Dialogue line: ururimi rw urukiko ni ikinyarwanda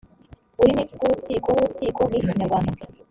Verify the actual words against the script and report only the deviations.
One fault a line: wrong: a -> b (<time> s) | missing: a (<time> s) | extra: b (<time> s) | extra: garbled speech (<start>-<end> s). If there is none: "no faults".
extra: urukiko (1.6 s)